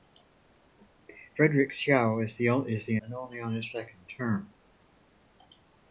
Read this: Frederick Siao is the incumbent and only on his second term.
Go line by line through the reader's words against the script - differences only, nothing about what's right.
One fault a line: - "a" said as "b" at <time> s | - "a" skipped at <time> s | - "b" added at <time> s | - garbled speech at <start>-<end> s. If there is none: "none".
- "incumbent" skipped at 3.0 s